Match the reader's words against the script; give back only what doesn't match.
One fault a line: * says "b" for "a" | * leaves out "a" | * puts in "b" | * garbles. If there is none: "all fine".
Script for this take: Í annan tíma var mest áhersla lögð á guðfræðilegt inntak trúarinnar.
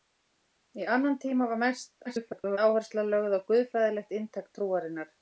* garbles